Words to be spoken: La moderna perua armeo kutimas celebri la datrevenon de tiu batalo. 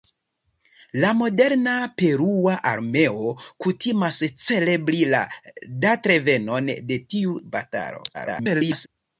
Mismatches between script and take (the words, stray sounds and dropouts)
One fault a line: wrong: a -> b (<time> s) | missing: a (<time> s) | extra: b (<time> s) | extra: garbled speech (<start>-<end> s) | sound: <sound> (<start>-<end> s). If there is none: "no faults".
extra: garbled speech (8.1-8.9 s)